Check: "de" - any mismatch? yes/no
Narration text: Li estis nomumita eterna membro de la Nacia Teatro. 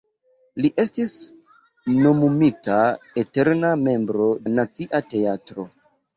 yes